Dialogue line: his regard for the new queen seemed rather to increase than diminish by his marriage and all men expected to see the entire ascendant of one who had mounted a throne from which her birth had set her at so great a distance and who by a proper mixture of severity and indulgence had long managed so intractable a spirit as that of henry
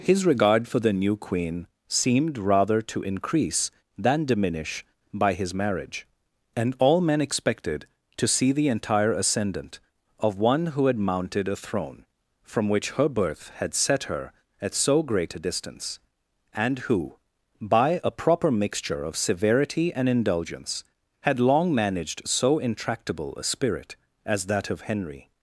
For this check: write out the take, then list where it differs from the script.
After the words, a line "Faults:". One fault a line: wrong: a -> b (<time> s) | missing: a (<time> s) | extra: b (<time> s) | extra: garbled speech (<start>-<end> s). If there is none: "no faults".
his regard for the new queen seemed rather to increase than diminish by his marriage and all men expected to see the entire ascendant of one who had mounted a throne from which her birth had set her at so great a distance and who by a proper mixture of severity and indulgence had long managed so intractable a spirit as that of henry
Faults:
no faults